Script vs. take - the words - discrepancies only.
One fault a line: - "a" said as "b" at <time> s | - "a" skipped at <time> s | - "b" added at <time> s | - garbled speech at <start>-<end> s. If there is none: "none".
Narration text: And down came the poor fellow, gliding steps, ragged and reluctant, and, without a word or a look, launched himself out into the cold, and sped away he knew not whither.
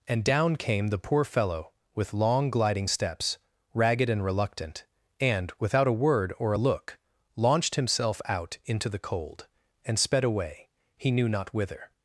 - "with long" added at 1.9 s